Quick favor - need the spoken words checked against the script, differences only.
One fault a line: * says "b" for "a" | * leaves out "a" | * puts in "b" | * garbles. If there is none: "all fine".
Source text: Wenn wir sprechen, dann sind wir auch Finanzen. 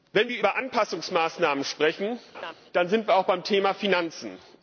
* puts in "über Anpassungsmaßnahmen"
* puts in "beim Thema"